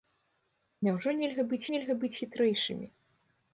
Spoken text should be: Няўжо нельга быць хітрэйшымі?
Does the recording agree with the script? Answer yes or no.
no